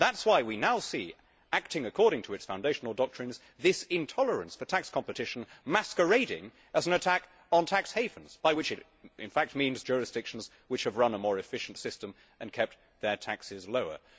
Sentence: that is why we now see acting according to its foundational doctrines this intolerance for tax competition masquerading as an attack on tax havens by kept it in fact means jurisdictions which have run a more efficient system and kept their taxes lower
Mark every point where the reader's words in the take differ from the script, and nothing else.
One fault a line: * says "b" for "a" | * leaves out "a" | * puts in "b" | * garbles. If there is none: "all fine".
* says "which" for "kept"